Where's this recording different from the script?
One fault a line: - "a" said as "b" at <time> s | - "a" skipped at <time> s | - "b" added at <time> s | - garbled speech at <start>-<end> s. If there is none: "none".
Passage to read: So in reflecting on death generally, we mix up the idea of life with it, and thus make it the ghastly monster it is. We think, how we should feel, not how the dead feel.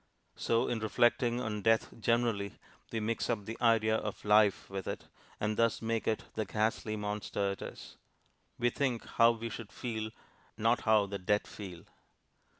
none